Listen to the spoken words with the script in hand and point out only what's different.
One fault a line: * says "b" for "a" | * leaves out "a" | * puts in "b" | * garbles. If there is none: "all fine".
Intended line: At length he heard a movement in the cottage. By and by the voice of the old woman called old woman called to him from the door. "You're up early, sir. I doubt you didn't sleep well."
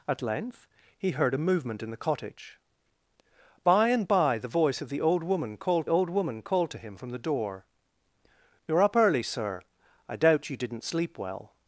all fine